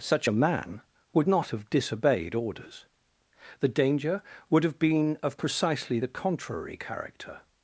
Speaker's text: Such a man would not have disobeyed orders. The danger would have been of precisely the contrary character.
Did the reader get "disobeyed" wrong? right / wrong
right